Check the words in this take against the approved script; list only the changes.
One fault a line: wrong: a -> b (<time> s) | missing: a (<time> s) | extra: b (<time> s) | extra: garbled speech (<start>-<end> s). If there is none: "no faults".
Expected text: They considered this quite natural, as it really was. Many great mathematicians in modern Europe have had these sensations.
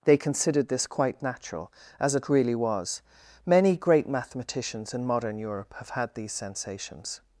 no faults